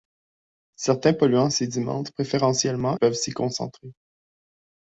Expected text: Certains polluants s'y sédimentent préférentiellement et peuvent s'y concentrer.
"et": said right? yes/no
no